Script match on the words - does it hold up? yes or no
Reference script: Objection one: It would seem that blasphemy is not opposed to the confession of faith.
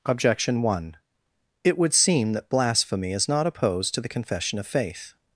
yes